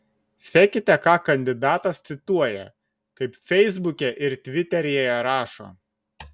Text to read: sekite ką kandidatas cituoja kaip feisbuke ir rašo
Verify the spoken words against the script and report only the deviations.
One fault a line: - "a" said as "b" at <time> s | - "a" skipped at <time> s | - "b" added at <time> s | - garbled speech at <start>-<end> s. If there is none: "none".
- "tviteryje" added at 4.5 s